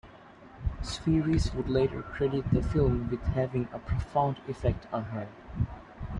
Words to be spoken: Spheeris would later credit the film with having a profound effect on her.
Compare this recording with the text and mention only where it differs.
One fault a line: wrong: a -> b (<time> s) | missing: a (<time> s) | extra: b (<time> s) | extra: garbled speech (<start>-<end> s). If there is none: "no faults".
no faults